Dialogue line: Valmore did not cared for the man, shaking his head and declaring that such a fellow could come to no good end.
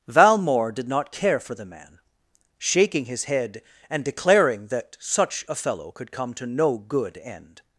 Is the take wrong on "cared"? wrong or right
wrong